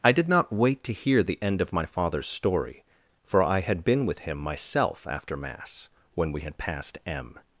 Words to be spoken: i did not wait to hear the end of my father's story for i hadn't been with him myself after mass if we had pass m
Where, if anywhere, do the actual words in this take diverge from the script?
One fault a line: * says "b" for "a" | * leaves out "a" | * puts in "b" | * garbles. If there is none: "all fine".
* says "had" for "hadn't"
* says "when" for "if"
* says "passed" for "pass"